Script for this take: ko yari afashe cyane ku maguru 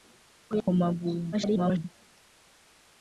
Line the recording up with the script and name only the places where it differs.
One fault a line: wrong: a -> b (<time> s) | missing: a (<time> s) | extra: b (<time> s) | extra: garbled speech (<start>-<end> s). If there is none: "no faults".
missing: yari afashe cyane (0.5 s)
extra: garbled speech (1.3-1.9 s)